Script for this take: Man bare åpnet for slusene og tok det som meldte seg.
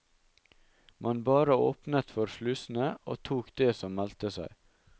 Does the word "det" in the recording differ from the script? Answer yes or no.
no